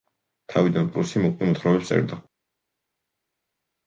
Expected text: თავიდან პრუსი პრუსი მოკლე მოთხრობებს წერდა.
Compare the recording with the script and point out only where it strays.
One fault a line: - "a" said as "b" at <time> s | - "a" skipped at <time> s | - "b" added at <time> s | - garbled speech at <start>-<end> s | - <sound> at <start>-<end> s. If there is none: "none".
- "პრუსი" skipped at 1.2 s